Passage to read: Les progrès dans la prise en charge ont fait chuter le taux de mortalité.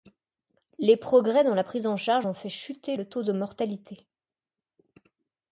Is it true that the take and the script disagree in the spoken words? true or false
false